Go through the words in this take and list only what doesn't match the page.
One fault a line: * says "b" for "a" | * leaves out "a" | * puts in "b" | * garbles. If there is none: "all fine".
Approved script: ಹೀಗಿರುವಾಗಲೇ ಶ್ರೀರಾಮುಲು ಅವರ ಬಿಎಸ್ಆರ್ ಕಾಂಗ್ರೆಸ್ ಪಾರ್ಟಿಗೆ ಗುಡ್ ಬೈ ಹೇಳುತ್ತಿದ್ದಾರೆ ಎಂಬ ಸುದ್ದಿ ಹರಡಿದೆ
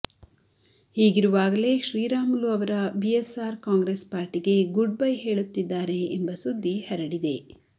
all fine